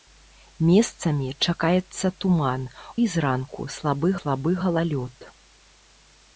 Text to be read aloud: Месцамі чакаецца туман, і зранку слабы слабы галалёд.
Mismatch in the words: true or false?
false